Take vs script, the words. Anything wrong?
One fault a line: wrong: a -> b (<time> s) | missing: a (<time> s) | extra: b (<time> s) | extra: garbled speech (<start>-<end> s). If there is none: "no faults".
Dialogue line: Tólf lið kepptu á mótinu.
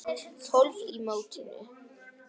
missing: lið kepptu (0.8 s)